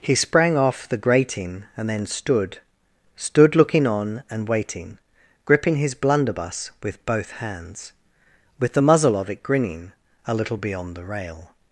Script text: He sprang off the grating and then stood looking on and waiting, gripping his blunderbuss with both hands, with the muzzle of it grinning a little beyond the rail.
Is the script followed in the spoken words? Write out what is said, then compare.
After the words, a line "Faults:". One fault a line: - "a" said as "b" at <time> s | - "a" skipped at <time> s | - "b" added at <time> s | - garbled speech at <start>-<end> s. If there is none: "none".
He sprang off the grating and then stood stood looking on and waiting, gripping his blunderbuss with both hands, with the muzzle of it grinning a little beyond the rail.
Faults:
- "stood" added at 3.1 s